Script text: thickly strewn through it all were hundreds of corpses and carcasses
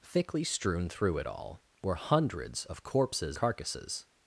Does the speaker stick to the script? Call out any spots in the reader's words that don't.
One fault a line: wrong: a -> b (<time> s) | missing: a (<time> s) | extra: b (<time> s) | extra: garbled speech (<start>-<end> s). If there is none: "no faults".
missing: and (3.4 s)